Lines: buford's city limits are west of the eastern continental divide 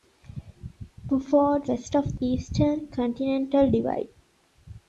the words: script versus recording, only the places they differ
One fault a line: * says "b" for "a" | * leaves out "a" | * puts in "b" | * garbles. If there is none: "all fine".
* leaves out "city limits are"
* leaves out "the"